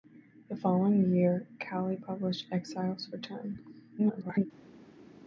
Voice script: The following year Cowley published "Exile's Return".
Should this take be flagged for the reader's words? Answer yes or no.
yes